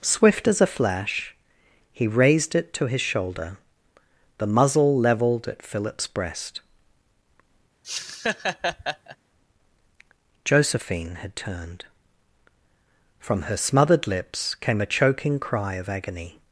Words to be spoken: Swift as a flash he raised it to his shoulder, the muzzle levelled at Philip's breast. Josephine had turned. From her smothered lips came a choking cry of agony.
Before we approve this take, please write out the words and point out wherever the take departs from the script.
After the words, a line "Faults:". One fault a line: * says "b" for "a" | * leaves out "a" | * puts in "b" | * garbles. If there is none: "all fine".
Swift as a flash he raised it to his shoulder, the muzzle levelled at Philip's breast. Josephine had turned. From her smothered lips came a choking cry of agony.
Faults:
all fine